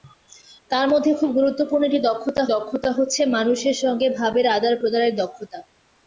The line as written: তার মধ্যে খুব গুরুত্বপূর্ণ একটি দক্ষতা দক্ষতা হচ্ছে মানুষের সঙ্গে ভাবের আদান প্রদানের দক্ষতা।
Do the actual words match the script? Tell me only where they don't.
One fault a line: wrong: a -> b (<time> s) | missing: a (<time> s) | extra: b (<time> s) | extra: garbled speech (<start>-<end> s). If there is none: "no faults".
no faults